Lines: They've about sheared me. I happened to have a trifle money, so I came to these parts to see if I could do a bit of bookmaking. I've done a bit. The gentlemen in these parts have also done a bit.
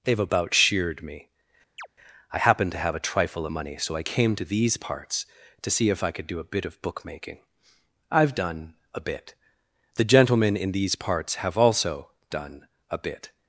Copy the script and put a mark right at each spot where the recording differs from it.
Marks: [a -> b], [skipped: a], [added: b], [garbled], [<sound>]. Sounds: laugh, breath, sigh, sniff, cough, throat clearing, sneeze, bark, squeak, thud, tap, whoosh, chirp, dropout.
They've about sheared me. [chirp] I happened to have a trifle money, so I came to these parts to see if I could do a bit of bookmaking. I've done a bit. The gentlemen in these parts have also done a bit.